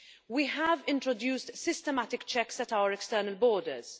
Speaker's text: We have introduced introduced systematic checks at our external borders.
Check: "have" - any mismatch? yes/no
no